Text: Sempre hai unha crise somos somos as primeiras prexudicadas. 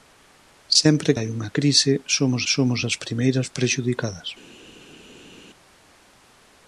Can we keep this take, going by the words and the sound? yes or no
yes